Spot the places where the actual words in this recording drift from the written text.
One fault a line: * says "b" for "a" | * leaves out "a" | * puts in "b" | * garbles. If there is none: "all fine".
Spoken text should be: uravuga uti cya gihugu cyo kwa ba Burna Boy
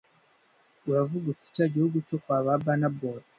all fine